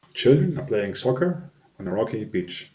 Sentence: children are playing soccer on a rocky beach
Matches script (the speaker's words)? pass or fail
pass